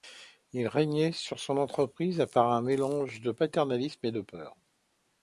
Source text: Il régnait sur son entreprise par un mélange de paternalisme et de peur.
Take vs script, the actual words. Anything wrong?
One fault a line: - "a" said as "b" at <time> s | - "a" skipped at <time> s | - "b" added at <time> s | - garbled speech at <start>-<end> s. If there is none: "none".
none